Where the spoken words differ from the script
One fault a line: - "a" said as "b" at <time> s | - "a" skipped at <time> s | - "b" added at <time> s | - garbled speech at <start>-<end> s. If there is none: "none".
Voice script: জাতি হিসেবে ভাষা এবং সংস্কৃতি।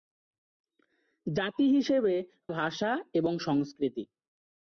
none